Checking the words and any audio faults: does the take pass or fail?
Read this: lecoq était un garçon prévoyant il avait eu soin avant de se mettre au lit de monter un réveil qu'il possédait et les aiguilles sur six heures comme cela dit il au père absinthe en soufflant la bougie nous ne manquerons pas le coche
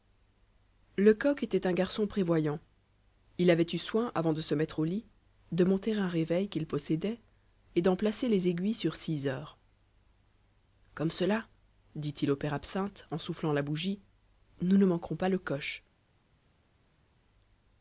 fail